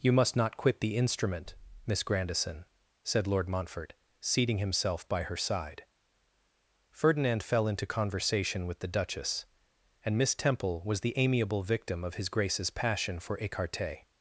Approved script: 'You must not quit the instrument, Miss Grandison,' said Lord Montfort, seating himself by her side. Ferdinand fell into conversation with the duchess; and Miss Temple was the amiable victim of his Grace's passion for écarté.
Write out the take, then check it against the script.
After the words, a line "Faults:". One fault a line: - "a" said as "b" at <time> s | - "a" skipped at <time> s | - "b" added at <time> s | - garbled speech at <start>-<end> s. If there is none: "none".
'You must not quit the instrument, Miss Grandison,' said Lord Montfort, seating himself by her side. Ferdinand fell into conversation with the duchess; and Miss Temple was the amiable victim of his Grace's passion for écarté.
Faults:
none